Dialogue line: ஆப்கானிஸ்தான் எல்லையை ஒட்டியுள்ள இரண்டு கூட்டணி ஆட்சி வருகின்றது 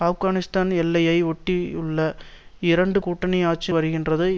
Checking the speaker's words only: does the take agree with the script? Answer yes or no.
yes